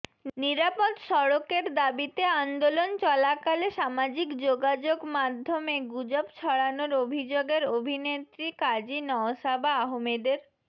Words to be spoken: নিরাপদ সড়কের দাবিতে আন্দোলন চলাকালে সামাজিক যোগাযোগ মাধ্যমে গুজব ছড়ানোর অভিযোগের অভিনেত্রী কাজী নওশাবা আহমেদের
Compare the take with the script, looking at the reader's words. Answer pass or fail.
pass